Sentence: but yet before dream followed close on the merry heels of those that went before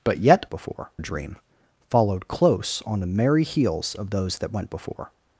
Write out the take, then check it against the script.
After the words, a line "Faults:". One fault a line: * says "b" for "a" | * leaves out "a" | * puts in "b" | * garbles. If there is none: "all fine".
but yet before dream followed close on the merry heels of those that went before
Faults:
all fine